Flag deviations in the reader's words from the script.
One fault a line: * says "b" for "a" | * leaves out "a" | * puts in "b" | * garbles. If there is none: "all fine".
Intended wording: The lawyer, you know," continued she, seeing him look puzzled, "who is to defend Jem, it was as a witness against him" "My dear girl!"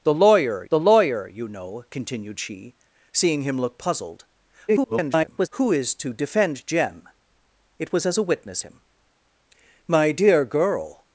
* puts in "the lawyer"
* garbles
* leaves out "against"